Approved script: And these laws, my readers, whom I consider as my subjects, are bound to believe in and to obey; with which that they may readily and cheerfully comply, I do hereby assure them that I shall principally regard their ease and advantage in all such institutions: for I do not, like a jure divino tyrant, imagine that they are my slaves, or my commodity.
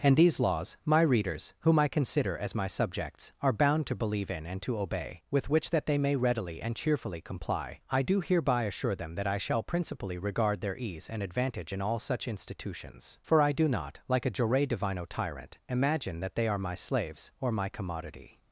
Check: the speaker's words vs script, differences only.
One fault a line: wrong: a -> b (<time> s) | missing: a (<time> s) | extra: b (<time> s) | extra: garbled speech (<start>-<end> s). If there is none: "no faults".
no faults